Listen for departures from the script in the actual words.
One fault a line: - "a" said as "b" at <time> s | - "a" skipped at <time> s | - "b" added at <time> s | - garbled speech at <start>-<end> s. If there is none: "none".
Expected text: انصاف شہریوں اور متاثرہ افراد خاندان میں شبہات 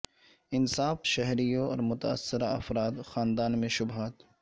none